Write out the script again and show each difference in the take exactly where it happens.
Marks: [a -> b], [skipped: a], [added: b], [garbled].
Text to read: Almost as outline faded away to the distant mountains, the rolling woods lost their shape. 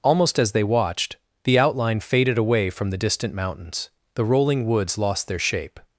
Almost as [added: they watched the] outline faded away [to -> from] the distant mountains, the rolling woods lost their shape.